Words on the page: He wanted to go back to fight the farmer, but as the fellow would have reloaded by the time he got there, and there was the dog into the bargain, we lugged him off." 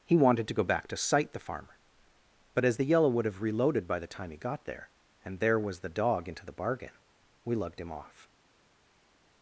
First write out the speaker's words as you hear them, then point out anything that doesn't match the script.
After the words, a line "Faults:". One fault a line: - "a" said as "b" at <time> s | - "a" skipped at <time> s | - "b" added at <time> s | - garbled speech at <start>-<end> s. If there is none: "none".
He wanted to go back to sight the farmer, but as the yellow would have reloaded by the time he got there, and there was the dog into the bargain, we lugged him off."
Faults:
- "fight" said as "sight" at 1.0 s
- "fellow" said as "yellow" at 2.9 s